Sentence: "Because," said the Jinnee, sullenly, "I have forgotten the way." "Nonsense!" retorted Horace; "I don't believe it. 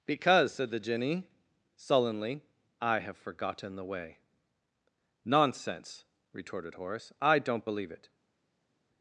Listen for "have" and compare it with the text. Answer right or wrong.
right